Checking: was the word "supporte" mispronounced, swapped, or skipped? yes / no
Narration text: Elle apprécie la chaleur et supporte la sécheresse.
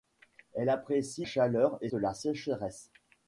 yes